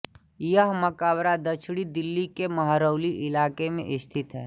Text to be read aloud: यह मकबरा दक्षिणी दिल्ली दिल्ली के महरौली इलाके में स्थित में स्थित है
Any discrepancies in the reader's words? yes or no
yes